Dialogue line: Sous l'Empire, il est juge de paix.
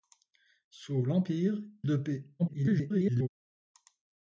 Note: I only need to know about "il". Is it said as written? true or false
false